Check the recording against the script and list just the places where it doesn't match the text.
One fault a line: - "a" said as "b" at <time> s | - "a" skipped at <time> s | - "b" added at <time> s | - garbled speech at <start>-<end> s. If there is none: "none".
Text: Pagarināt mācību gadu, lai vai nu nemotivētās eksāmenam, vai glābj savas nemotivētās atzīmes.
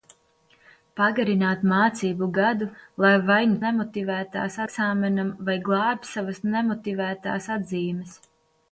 none